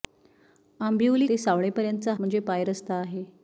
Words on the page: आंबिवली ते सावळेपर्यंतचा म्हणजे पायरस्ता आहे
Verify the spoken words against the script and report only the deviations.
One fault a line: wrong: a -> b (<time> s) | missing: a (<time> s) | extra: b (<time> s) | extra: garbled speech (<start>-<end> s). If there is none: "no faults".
no faults